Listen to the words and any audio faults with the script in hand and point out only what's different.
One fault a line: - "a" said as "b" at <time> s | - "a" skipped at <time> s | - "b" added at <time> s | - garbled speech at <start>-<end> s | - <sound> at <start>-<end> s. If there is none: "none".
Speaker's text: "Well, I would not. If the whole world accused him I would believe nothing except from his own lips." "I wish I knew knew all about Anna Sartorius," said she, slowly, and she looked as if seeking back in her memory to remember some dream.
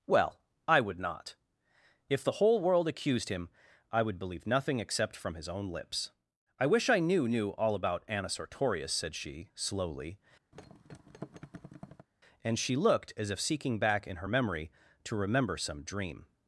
- thud at 10.5-12.1 s